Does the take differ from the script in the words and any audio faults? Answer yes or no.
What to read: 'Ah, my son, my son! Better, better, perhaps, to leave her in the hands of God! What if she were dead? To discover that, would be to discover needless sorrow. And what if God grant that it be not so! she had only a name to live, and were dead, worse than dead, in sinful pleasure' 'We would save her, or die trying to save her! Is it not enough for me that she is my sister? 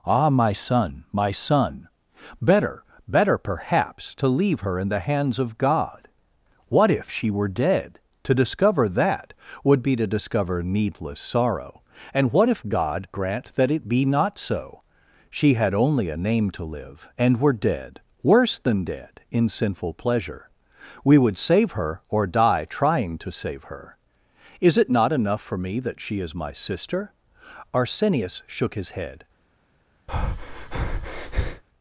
yes